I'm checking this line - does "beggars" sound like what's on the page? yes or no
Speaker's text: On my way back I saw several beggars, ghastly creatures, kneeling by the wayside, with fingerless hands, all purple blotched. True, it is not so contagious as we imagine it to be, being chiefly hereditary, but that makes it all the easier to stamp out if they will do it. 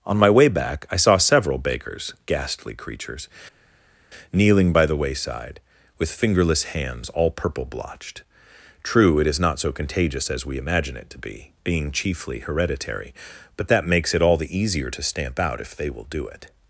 no